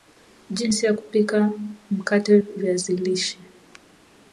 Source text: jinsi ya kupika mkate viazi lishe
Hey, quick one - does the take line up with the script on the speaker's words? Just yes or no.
yes